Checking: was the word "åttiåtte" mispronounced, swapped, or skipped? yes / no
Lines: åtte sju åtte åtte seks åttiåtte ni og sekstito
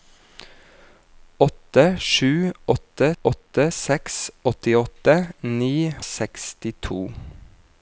no